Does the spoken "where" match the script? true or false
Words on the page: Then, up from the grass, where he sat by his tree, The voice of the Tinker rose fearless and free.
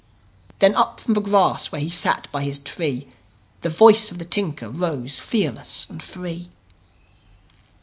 true